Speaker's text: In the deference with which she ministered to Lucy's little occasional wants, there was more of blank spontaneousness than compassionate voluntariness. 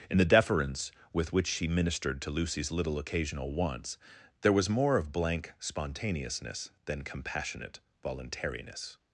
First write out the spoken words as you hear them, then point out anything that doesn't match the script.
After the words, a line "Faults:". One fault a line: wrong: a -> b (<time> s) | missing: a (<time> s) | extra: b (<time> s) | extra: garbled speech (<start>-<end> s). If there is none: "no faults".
In the deference with which she ministered to Lucy's little occasional wants, there was more of blank spontaneousness than compassionate voluntariness.
Faults:
no faults